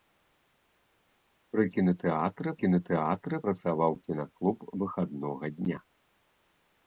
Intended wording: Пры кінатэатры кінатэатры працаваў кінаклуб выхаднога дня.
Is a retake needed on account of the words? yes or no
no